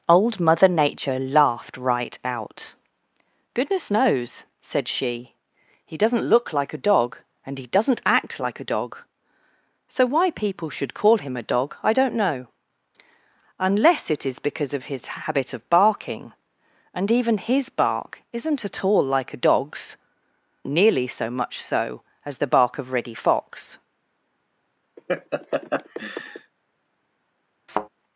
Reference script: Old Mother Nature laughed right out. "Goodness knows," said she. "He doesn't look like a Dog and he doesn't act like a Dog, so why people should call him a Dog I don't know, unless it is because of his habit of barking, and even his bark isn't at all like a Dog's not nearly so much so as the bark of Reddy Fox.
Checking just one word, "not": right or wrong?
wrong